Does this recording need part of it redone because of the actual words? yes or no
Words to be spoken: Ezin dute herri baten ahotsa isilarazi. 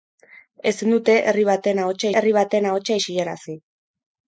yes